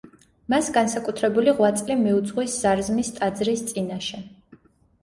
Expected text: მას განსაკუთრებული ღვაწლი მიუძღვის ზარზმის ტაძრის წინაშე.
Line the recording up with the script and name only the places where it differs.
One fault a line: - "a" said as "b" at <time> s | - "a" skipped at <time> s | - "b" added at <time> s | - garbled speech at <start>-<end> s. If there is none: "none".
none